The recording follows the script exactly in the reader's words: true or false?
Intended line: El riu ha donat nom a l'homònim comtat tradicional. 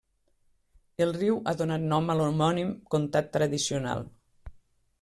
true